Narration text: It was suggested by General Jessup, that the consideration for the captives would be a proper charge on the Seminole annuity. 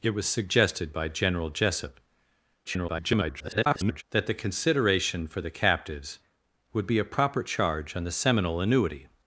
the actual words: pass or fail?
fail